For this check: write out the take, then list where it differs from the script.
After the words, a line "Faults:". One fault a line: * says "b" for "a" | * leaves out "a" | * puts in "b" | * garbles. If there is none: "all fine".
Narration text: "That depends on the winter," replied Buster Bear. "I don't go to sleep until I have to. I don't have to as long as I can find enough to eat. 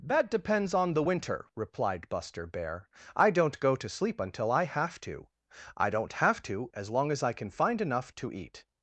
"That depends on the winter," replied Buster Bear. "I don't go to sleep until I have to. I don't have to as long as I can find enough to eat.
Faults:
all fine